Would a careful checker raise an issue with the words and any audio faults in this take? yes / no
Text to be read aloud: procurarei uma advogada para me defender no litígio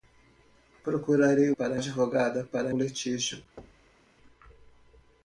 yes